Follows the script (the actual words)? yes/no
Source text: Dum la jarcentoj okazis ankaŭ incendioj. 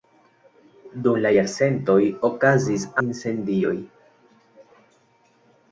no